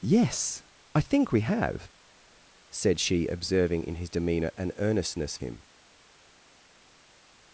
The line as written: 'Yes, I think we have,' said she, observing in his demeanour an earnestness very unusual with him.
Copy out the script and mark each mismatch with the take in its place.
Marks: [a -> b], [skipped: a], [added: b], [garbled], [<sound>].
'Yes, I think we have,' said she, observing in his demeanour an earnestness [skipped: very unusual with] him.